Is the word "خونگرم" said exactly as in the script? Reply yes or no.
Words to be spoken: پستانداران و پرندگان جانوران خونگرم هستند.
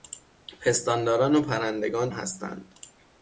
no